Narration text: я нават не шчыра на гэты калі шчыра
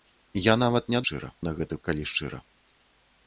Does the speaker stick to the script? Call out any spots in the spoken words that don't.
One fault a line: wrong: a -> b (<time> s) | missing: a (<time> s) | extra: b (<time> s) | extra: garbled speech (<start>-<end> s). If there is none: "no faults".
no faults